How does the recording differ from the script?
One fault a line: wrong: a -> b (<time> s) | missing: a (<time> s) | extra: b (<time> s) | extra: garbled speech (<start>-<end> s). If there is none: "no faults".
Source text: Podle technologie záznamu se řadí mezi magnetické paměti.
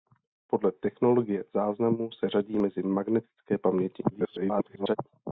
extra: garbled speech (4.1-5.0 s)